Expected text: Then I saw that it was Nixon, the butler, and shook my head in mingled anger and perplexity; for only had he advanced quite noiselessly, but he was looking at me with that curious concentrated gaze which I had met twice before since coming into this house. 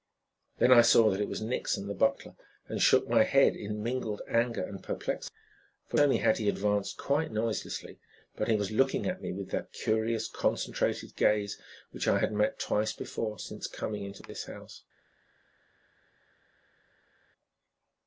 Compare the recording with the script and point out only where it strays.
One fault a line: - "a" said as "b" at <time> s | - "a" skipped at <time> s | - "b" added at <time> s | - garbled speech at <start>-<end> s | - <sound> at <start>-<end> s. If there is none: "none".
none